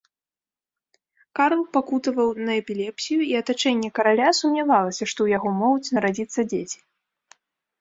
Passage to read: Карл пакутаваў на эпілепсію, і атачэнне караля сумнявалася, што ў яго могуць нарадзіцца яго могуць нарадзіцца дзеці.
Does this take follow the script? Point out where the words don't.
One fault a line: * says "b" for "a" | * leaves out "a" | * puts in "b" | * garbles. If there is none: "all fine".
* leaves out "яго могуць нарадзіцца"